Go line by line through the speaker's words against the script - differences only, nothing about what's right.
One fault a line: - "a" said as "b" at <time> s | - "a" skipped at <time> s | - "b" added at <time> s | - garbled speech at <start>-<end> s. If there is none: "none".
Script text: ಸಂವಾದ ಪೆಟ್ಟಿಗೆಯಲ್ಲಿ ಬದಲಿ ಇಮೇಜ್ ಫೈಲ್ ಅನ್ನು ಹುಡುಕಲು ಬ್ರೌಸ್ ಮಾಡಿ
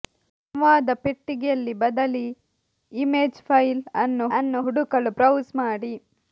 - "ಅನ್ನು" added at 4.4 s